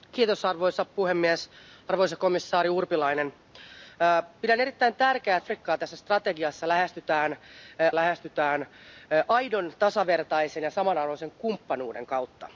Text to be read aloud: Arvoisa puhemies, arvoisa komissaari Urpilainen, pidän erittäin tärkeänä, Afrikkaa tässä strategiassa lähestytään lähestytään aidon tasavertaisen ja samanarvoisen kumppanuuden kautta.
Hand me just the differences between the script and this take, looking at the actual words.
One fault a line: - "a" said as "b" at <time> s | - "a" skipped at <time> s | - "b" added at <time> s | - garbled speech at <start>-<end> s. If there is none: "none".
none